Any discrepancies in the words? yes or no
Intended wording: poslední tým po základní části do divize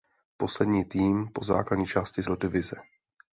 no